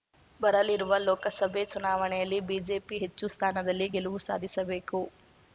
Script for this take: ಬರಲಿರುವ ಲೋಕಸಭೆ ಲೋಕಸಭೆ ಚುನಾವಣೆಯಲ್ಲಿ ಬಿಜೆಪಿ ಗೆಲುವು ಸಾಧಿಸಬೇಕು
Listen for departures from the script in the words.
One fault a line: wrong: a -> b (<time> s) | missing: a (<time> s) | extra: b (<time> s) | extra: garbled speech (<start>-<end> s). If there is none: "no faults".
missing: ಲೋಕಸಭೆ (1.6 s)
extra: ಹೆಚ್ಚು ಸ್ಥಾನದಲ್ಲಿ (3.0 s)